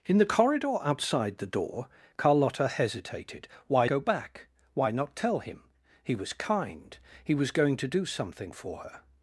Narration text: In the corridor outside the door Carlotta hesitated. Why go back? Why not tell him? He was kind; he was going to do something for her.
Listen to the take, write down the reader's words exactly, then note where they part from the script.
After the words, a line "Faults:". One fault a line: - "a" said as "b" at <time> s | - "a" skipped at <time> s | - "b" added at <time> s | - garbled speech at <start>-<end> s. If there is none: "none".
In the corridor outside the door Carlotta hesitated. Why go back? Why not tell him? He was kind; he was going to do something for her.
Faults:
none